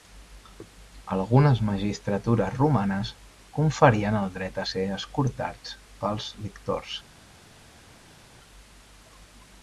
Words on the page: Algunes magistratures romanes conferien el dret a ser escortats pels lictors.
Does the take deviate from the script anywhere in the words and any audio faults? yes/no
no